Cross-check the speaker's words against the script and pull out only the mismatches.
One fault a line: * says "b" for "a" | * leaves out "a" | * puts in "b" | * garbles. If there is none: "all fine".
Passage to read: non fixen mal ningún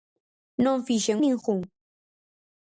* leaves out "mal"